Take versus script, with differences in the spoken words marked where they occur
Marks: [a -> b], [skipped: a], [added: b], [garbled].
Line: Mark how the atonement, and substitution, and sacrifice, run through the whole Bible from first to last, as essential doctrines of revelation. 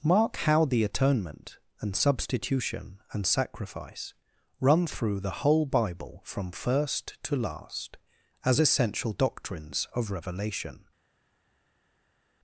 Mark how the atonement, and substitution, and sacrifice, run through the whole Bible from first to last, as essential doctrines of revelation.